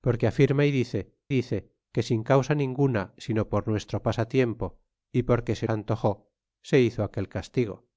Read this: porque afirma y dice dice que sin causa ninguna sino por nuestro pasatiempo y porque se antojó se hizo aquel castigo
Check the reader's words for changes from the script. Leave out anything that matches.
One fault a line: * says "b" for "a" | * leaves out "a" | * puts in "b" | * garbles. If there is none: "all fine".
all fine